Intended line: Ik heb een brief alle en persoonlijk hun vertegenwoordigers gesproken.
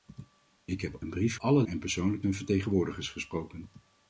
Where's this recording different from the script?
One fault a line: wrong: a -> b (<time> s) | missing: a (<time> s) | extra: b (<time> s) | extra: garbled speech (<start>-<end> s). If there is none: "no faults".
no faults